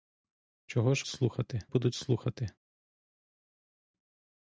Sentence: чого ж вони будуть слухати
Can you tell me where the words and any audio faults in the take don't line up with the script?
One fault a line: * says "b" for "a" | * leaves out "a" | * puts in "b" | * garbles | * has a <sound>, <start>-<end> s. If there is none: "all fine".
* says "слухати" for "вони"